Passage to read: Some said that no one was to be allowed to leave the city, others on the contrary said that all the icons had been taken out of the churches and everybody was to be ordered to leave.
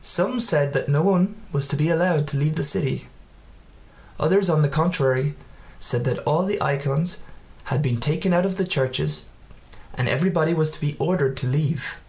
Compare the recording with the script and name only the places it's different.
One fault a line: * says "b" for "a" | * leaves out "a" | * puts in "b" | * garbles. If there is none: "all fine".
all fine